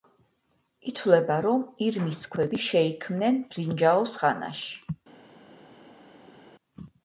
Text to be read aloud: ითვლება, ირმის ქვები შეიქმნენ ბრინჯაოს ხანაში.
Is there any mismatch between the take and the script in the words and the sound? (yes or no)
yes